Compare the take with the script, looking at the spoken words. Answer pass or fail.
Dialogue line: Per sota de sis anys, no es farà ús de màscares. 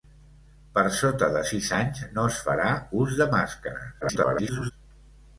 fail